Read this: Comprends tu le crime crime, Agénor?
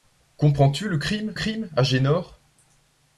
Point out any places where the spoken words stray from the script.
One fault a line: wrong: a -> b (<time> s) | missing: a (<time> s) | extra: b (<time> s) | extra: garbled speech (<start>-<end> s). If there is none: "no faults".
no faults